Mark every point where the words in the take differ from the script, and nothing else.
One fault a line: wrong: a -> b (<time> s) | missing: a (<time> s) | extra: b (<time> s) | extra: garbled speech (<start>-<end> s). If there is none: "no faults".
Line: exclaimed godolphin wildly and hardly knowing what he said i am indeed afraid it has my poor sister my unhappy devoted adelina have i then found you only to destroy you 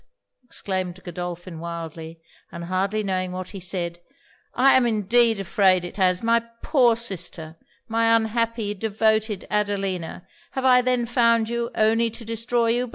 no faults